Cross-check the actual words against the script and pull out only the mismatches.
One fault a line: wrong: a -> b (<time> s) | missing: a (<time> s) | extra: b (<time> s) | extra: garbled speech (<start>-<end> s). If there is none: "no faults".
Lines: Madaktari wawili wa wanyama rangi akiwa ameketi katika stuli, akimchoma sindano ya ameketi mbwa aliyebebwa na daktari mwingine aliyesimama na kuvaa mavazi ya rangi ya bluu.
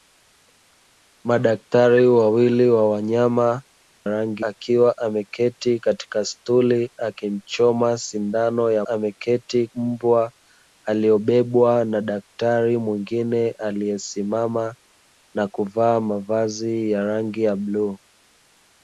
no faults